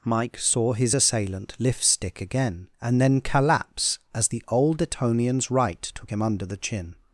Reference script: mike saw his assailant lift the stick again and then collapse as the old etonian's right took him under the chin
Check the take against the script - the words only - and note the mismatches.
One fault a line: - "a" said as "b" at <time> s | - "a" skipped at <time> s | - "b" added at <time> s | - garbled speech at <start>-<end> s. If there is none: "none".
- "the" skipped at 1.8 s